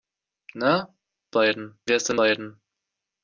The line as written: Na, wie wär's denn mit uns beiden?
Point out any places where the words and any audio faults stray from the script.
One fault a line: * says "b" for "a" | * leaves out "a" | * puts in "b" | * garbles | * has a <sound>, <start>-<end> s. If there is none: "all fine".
* says "beiden" for "wie"
* leaves out "mit uns"